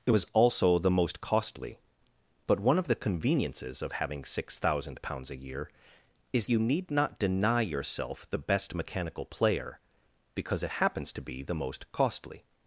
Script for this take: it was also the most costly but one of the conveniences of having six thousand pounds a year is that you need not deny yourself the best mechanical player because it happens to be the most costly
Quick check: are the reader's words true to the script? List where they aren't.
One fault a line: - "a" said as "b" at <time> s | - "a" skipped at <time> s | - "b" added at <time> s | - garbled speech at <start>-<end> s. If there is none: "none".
- "that" skipped at 6.5 s